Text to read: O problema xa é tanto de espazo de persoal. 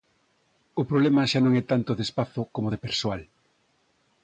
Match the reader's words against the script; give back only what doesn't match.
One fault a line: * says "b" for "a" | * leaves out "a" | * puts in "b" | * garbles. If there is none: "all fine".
* puts in "non"
* puts in "como"